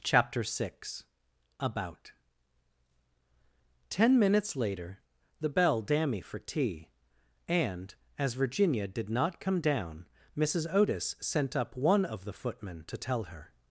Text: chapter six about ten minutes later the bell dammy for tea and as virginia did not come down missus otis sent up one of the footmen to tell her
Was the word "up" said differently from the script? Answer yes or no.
no